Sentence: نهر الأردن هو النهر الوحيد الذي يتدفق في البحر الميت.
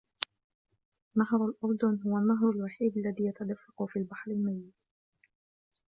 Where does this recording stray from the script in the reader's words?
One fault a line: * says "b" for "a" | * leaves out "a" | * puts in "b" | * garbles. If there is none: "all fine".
all fine